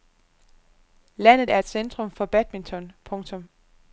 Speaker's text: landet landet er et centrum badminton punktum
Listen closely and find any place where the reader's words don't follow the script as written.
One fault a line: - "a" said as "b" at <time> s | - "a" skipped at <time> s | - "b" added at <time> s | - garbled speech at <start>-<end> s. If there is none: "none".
- "landet" skipped at 1.5 s
- "for" added at 2.1 s